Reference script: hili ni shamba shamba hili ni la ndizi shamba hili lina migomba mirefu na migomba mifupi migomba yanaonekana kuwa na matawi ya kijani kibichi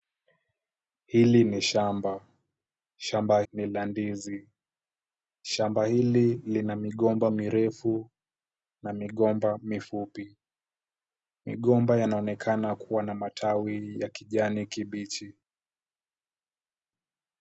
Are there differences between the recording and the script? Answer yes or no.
yes